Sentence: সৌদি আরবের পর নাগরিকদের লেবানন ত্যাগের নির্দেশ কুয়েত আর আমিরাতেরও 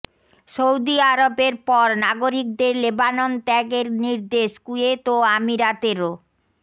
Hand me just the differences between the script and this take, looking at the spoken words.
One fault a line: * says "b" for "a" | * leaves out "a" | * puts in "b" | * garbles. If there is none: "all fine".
* says "ও" for "আর"